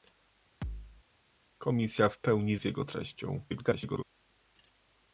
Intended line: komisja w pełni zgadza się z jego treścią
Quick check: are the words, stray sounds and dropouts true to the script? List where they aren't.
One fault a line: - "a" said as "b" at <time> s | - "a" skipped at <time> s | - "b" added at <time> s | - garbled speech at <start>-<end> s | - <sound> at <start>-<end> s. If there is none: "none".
- thud at 0.6-1.0 s
- "zgadza się" skipped at 2.6 s
- garbled speech at 3.5-4.0 s